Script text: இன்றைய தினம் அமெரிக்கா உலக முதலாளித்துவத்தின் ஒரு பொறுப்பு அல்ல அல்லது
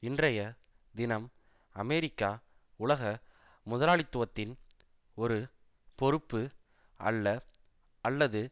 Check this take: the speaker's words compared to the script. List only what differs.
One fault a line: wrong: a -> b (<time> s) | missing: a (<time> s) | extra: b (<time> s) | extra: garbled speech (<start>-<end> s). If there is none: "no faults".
no faults